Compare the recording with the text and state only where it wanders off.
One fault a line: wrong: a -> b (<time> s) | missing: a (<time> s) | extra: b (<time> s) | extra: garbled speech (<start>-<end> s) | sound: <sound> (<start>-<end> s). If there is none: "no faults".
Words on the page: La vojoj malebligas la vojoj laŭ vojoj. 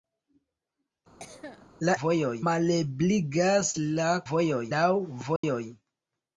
sound: cough (1.2-1.7 s)
sound: dropout (5.4-5.4 s)